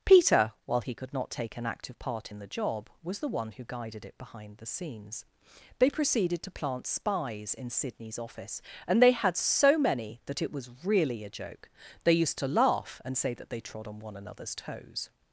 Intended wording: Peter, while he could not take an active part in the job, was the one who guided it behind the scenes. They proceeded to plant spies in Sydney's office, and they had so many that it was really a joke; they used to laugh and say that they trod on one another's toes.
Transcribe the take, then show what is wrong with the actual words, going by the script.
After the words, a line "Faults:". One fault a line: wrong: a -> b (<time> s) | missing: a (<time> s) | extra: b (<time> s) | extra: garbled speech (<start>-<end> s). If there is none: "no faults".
Peter, while he could not take an active part in the job, was the one who guided it behind the scenes. They proceeded to plant spies in Sydney's office, and they had so many that it was really a joke; they used to laugh and say that they trod on one another's toes.
Faults:
no faults